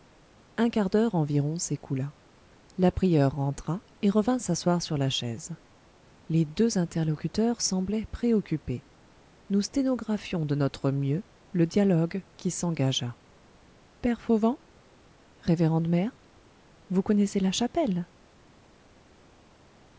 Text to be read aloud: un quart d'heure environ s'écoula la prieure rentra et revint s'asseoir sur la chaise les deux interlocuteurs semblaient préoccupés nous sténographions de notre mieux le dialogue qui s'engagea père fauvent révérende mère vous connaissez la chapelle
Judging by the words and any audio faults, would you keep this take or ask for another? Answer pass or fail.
pass